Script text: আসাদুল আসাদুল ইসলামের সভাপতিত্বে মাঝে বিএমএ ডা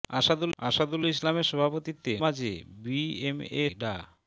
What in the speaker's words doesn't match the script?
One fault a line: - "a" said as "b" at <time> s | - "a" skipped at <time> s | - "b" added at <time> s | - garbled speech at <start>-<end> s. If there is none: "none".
none